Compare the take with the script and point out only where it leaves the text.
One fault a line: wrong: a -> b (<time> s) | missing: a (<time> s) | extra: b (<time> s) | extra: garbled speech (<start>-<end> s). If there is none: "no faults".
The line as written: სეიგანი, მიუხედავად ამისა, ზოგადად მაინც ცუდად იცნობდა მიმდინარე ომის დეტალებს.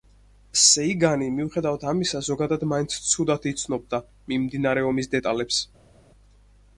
no faults